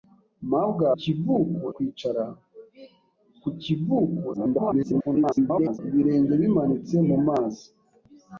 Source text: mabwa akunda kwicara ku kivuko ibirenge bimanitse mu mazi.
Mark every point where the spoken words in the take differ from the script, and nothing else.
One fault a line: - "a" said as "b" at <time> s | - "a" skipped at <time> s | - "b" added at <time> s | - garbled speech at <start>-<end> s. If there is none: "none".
- "akunda" said as "kivuko" at 1.0 s
- garbled speech at 4.3-5.8 s